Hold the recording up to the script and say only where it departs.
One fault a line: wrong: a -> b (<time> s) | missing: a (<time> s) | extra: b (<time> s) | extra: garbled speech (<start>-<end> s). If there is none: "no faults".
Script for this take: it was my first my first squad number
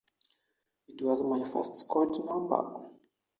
missing: my first (1.8 s)